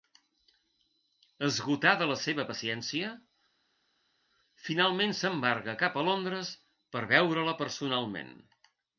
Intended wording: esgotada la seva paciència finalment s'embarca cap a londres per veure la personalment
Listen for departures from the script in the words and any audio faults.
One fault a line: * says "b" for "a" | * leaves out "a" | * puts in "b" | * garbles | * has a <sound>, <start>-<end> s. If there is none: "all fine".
all fine